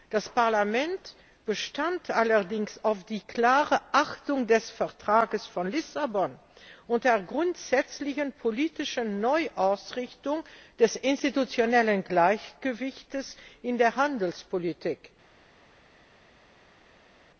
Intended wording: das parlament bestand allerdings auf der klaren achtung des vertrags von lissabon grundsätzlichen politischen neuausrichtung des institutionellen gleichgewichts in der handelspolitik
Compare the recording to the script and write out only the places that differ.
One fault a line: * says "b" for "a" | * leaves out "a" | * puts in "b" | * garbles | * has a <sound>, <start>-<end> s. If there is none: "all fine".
* puts in "und der"